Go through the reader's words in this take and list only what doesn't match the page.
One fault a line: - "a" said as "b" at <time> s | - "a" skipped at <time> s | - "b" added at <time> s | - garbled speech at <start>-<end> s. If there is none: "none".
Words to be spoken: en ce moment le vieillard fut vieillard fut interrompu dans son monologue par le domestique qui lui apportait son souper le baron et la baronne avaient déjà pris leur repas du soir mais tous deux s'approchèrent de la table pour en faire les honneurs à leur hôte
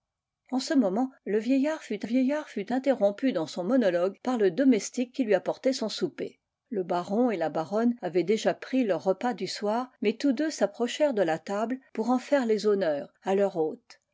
none